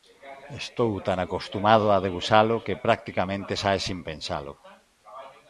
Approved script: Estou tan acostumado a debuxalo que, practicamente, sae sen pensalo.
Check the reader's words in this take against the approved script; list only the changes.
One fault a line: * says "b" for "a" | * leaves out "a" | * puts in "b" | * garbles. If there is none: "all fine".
all fine